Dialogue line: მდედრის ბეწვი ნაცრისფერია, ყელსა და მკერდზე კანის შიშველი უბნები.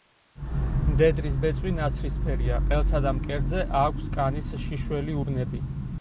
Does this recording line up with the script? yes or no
no